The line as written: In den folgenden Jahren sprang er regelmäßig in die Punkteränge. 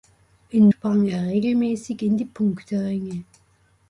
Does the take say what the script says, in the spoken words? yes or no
no